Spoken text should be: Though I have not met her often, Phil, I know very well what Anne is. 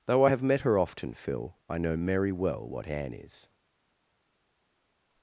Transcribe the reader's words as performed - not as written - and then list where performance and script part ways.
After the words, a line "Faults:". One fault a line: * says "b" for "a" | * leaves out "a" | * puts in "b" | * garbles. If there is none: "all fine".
Though I have met her often, Phil, I know merry well what Anne is.
Faults:
* leaves out "not"
* says "merry" for "very"